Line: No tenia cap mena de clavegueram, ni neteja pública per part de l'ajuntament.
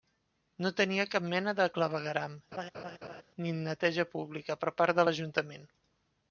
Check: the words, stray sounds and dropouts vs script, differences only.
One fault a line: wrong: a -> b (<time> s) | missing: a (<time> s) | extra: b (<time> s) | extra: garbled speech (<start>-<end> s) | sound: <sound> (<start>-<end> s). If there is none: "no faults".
sound: laugh (2.5-3.2 s)